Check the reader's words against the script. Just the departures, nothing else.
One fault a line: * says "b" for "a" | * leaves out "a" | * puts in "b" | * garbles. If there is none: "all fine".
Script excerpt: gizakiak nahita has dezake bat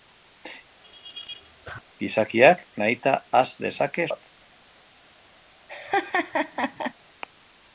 all fine